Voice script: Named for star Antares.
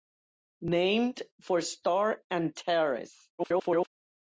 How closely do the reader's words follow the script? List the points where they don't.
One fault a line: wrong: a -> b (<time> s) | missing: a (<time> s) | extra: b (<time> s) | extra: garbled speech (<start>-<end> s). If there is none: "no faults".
extra: garbled speech (3.4-3.9 s)